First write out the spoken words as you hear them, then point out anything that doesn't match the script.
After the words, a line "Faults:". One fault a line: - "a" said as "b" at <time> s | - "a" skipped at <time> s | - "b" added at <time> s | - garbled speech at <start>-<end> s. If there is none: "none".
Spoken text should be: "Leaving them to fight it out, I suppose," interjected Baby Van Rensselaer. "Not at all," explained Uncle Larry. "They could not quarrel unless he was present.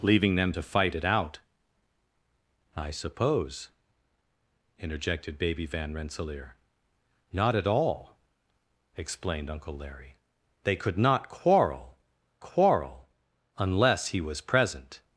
"Leaving them to fight it out, I suppose," interjected Baby Van Rensselaer. "Not at all," explained Uncle Larry. "They could not quarrel quarrel unless he was present.
Faults:
- "quarrel" added at 12.4 s